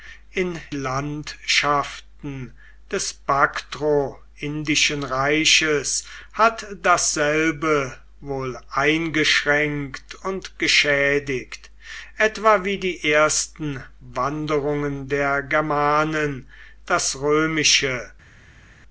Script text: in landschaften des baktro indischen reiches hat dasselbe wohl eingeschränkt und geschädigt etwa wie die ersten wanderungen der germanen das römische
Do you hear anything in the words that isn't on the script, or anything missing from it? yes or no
no